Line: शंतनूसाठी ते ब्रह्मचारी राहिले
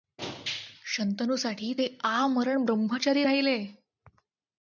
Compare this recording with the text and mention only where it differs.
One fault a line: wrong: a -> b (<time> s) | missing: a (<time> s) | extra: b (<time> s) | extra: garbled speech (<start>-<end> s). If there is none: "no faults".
extra: आमरण (2.0 s)